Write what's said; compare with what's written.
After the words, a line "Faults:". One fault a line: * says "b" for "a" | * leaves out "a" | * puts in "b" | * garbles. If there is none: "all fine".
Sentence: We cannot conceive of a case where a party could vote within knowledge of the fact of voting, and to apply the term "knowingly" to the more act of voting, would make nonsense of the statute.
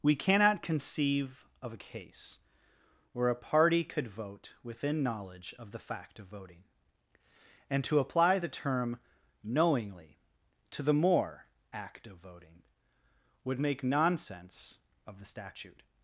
We cannot conceive of a case where a party could vote within knowledge of the fact of voting, and to apply the term "knowingly" to the more act of voting, would make nonsense of the statute.
Faults:
all fine